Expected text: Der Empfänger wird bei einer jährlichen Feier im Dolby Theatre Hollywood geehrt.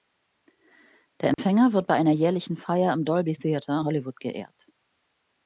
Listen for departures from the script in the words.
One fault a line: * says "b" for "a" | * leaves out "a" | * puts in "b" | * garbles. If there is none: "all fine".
all fine